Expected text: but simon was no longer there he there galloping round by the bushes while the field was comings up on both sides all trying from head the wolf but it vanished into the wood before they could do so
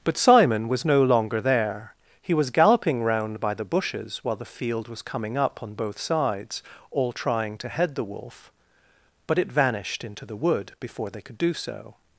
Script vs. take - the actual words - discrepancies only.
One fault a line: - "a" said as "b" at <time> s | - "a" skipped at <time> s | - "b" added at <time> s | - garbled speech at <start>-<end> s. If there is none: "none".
- "there" said as "was" at 2.3 s
- "comings" said as "coming" at 5.0 s
- "from" said as "to" at 7.6 s